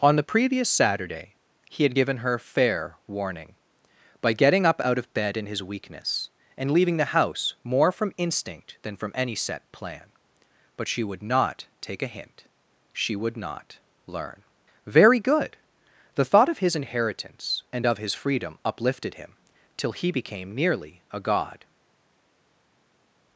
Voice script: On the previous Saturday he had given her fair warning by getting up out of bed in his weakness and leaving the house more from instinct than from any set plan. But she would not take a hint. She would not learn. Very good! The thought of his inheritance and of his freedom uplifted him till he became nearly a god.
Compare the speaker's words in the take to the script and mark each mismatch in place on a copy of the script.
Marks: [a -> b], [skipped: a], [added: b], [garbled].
On the previous Saturday he had given her fair warning by getting up out of bed in his weakness and leaving the house more from instinct than from any set plan. But she would not take a hint. She would not learn. Very good! The thought of his inheritance and of his freedom uplifted him till he became nearly a god.